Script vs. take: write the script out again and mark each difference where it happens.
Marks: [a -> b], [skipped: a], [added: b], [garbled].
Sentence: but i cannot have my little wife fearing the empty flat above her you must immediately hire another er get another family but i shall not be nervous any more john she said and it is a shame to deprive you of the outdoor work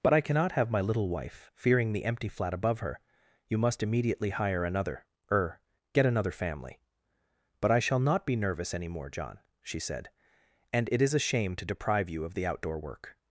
but i cannot have my little wife fearing the empty flat above her you must immediately hire another er get another family but i shall not be nervous any more john she said and it is a shame to deprive you of the outdoor work